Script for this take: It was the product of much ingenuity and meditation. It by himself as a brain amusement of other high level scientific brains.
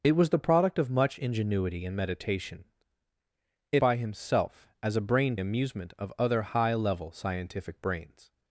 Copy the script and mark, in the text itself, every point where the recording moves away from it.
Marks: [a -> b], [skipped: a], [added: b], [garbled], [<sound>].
It was the product of much ingenuity and meditation. It by himself as a brain amusement of other high level scientific brains.